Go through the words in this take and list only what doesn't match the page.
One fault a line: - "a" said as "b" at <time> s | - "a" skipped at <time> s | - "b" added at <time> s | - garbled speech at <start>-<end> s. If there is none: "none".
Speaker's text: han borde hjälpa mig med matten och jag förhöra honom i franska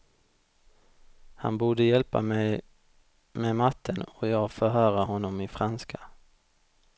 none